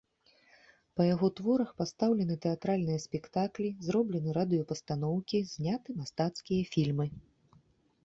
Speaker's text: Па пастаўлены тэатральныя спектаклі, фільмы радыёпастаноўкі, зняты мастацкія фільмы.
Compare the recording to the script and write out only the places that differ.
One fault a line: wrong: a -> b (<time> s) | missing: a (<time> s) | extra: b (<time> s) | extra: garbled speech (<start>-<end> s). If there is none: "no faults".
extra: яго творах (1.1 s)
wrong: фільмы -> зроблены (3.9 s)